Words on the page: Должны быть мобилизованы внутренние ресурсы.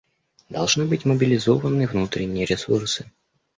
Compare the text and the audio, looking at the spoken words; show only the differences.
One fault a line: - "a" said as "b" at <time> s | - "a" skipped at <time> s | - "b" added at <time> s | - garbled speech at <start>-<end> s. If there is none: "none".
none